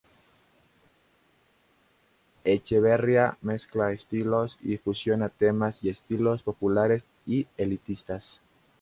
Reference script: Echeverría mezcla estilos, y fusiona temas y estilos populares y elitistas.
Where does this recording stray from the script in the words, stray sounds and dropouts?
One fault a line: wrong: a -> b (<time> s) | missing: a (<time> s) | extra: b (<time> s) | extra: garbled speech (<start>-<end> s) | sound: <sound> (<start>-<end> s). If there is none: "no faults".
no faults